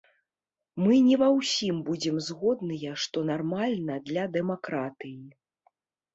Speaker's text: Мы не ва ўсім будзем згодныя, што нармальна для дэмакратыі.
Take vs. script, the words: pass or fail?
pass